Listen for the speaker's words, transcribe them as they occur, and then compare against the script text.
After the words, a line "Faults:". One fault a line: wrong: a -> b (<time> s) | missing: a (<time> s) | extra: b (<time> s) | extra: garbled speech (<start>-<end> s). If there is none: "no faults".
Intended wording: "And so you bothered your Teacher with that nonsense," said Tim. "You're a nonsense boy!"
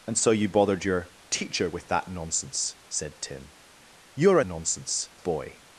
"And so you bothered your Teacher with that nonsense," said Tim. "You're a nonsense boy!"
Faults:
no faults